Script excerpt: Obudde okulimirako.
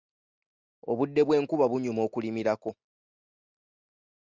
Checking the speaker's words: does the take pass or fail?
fail